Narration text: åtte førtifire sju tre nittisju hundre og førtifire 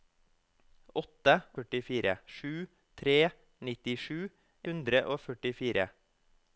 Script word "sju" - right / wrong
right